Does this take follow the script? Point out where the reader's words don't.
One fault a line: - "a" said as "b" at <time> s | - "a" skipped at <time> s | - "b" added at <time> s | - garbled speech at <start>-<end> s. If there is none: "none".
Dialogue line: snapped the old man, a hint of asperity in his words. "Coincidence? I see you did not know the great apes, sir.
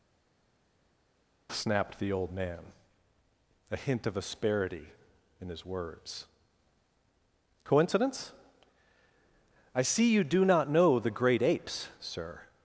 - "did" said as "do" at 10.2 s